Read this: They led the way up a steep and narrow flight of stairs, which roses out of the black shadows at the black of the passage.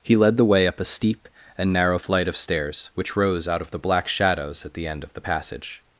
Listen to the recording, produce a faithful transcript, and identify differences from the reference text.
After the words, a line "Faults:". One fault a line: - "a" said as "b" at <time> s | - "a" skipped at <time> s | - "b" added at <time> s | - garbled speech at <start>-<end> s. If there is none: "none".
He led the way up a steep and narrow flight of stairs, which rose out of the black shadows at the end of the passage.
Faults:
- "They" said as "He" at 0.0 s
- "roses" said as "rose" at 3.2 s
- "black" said as "end" at 4.9 s